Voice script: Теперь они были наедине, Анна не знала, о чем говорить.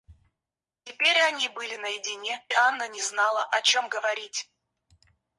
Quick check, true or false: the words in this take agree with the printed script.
true